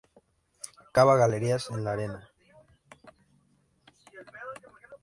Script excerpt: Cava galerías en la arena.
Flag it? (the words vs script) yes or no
no